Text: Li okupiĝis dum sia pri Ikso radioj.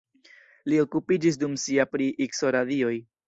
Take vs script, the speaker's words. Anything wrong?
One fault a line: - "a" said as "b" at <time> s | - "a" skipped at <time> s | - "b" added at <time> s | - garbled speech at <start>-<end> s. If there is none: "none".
none